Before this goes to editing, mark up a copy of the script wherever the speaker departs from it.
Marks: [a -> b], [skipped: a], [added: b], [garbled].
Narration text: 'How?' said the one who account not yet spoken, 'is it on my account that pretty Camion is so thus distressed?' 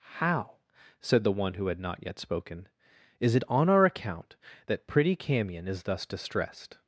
'How?' said the one who [account -> had] not yet spoken, 'is it on [my -> our] account that pretty Camion is [skipped: so] thus distressed?'